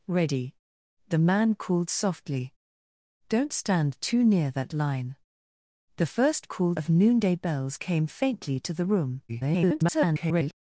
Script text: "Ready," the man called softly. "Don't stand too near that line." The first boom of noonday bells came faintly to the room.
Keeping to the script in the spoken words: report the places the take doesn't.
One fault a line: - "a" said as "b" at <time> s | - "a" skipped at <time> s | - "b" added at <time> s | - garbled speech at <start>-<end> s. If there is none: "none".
- "boom" said as "called" at 6.5 s
- garbled speech at 9.3-10.5 s